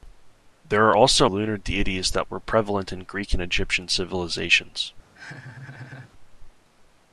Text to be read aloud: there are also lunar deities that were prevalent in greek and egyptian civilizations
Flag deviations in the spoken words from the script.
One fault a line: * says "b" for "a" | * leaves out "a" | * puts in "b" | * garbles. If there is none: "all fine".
all fine